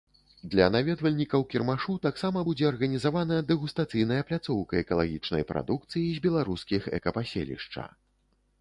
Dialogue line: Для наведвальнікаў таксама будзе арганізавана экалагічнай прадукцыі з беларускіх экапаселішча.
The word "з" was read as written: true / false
true